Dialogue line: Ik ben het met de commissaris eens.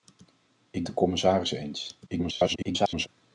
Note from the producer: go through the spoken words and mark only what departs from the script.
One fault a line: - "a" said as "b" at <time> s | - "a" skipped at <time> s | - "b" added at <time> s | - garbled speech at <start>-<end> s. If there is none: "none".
- "ben het met" skipped at 0.8 s
- garbled speech at 2.1-3.1 s